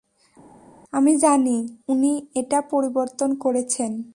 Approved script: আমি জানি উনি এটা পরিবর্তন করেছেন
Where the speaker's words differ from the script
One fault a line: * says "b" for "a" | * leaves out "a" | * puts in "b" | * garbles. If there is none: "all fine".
all fine